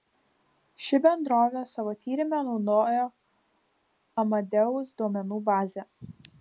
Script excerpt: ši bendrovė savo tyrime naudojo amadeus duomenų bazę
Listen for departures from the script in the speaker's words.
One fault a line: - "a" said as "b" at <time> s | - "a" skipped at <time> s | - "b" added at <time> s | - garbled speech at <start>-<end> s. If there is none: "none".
none